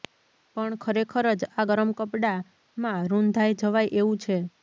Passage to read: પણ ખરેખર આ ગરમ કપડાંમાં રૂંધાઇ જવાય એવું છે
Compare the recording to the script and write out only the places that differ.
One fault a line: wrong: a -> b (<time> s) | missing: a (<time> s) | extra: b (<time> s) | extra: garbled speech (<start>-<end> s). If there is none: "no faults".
extra: જ (1.4 s)